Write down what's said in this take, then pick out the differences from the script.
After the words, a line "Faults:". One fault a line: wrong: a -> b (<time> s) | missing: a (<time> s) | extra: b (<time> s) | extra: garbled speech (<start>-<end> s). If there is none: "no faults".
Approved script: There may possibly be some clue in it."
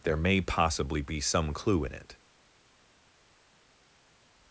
There may possibly be some clue in it."
Faults:
no faults